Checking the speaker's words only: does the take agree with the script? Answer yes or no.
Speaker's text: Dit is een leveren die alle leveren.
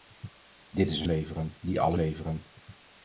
yes